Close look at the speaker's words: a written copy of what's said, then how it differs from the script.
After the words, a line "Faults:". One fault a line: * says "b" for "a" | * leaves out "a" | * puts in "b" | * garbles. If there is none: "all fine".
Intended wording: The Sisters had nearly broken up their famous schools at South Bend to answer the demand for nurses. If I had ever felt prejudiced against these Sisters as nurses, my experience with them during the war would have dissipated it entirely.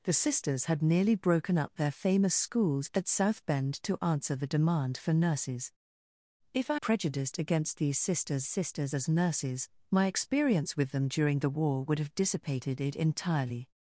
The Sisters had nearly broken up their famous schools at South Bend to answer the demand for nurses. If I prejudiced against these Sisters Sisters as nurses, my experience with them during the war would have dissipated it entirely.
Faults:
* leaves out "had ever felt"
* puts in "Sisters"